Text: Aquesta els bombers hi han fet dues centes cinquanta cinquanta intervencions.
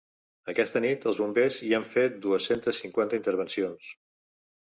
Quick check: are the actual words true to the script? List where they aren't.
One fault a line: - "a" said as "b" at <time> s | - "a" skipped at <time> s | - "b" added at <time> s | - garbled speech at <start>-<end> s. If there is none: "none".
- "nit" added at 0.8 s
- "cinquanta" skipped at 3.2 s